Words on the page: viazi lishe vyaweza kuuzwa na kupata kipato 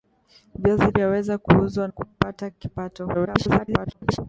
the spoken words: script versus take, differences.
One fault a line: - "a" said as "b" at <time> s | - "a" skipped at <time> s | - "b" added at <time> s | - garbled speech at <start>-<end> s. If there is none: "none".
- "lishe" skipped at 0.9 s
- "na" skipped at 1.9 s
- garbled speech at 3.1-4.2 s